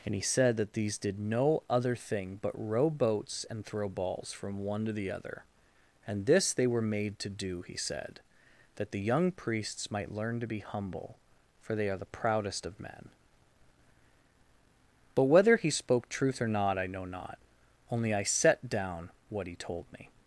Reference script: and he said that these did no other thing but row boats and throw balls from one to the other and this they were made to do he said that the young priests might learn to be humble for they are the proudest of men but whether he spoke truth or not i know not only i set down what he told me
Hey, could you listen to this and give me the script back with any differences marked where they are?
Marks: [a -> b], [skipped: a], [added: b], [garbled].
and he said that these did no other thing but row boats and throw balls from one to the other and this they were made to do he said that the young priests might learn to be humble for they are the proudest of men but whether he spoke truth or not i know not only i set down what he told me